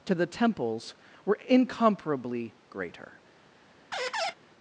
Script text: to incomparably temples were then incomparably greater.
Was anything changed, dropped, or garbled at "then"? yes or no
yes